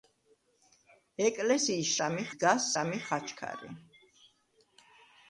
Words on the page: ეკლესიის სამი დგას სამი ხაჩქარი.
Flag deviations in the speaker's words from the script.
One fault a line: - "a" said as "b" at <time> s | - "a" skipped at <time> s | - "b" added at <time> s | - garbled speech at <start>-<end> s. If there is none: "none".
none